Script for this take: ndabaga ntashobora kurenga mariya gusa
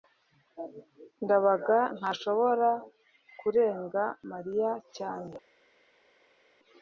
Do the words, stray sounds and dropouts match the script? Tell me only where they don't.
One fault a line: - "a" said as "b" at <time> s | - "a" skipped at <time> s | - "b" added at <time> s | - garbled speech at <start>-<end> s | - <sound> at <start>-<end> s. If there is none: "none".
- "gusa" said as "cyane" at 5.0 s